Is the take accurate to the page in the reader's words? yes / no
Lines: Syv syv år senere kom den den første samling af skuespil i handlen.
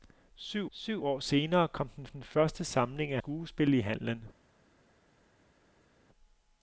yes